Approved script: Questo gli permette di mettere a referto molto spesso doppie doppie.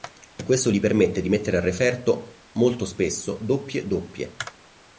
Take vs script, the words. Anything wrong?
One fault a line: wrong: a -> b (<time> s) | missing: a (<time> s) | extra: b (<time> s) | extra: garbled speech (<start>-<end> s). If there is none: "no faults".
no faults